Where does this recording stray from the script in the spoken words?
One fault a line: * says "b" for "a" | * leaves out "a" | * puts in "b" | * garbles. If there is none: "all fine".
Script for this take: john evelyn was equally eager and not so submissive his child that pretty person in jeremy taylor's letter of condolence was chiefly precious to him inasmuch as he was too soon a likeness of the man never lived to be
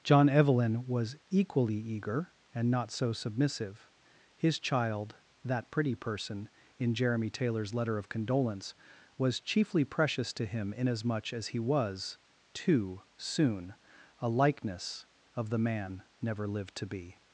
all fine